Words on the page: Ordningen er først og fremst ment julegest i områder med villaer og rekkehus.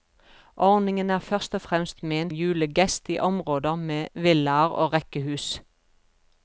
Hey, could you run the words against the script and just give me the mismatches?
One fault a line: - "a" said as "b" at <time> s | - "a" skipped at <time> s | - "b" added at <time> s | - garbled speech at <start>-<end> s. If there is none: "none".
none